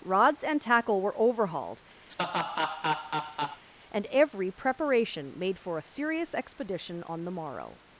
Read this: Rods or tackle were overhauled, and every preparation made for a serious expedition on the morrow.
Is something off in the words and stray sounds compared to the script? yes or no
yes